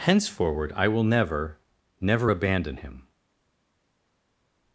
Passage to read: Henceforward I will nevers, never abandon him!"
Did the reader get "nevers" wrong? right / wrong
wrong